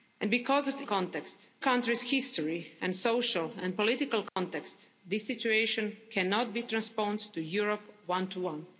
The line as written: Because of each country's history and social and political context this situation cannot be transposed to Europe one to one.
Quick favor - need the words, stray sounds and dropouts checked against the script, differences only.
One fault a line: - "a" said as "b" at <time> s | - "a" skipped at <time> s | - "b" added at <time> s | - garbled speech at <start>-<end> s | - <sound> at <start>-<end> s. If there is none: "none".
- "each" said as "context" at 0.8 s
- dropout at 4.3-4.4 s